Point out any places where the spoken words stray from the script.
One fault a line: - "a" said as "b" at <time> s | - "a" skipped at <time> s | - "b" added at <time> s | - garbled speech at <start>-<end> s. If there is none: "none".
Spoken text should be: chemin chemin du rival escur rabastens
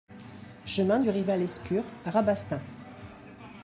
- "chemin" skipped at 1.0 s